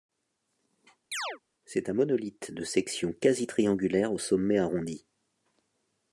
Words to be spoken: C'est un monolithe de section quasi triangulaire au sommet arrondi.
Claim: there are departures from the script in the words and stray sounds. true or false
true